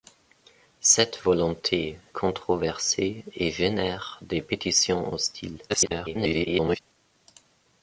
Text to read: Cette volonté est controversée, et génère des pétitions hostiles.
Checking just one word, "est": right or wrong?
wrong